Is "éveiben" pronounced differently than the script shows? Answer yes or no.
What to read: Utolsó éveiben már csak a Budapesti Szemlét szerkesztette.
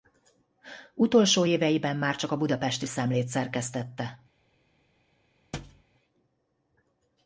no